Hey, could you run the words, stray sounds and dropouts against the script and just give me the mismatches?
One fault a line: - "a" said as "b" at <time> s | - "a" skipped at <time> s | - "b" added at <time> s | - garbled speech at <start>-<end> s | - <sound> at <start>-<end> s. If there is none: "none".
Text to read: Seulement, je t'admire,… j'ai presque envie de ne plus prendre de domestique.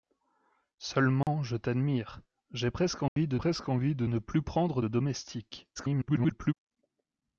- dropout at 1.2-1.3 s
- dropout at 3.1-3.2 s
- "presque envie de" added at 3.4 s
- garbled speech at 5.8-6.5 s